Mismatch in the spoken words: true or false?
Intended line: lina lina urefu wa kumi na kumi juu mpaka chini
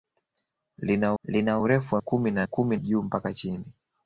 false